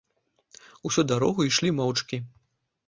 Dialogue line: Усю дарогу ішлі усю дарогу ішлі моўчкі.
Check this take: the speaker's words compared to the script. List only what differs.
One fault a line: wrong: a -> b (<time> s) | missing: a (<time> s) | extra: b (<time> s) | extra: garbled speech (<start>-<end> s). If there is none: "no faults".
missing: усю дарогу ішлі (1.7 s)